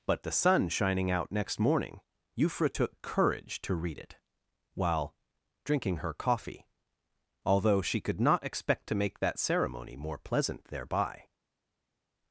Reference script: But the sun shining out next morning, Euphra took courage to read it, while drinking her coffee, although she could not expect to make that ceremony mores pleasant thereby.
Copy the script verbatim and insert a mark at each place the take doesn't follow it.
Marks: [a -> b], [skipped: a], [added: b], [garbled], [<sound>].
But the sun shining out next morning, Euphra took courage to read it, while drinking her coffee, although she could not expect to make that ceremony [mores -> more] pleasant thereby.